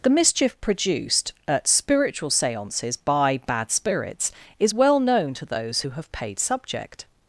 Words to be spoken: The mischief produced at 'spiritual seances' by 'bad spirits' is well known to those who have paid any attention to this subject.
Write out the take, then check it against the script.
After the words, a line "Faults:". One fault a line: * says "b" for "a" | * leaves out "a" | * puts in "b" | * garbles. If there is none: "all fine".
The mischief produced at 'spiritual seances' by 'bad spirits' is well known to those who have paid subject.
Faults:
* leaves out "any attention to this"